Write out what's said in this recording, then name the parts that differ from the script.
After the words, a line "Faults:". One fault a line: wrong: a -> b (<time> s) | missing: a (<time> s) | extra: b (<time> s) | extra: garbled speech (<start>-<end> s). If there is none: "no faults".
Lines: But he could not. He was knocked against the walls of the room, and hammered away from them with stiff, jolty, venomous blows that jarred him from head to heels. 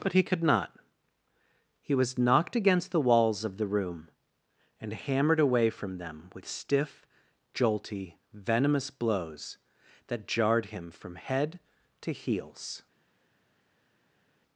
But he could not. He was knocked against the walls of the room, and hammered away from them with stiff, jolty, venomous blows that jarred him from head to heels.
Faults:
no faults